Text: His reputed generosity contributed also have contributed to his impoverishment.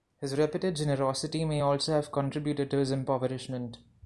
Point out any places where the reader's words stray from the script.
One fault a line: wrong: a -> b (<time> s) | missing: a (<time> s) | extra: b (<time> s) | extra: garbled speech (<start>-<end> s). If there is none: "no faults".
wrong: contributed -> may (1.4 s)